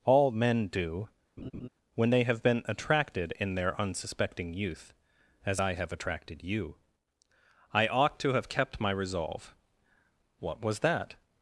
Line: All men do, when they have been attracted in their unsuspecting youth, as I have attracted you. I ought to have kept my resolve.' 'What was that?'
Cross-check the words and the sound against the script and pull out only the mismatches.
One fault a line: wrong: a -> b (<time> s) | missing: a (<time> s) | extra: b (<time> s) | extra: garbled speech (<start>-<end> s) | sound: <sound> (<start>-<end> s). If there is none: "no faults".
sound: laugh (1.4-1.7 s)